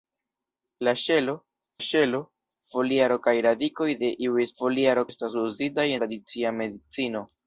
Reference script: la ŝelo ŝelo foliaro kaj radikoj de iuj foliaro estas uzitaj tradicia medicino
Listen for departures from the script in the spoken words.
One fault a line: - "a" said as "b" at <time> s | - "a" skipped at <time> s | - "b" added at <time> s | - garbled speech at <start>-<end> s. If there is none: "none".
none